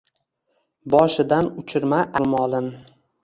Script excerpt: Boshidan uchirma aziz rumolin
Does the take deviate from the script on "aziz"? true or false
true